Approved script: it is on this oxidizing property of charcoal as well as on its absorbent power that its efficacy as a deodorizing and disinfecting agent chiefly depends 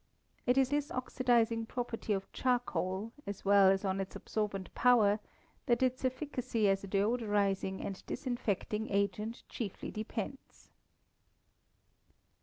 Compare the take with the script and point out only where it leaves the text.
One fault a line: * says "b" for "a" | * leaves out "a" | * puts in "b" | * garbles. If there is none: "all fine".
* leaves out "on"